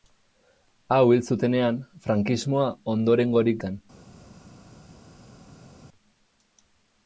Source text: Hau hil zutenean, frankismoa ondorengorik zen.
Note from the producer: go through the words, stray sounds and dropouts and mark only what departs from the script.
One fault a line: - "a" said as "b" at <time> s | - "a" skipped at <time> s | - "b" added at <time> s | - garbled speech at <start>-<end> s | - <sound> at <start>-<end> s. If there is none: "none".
none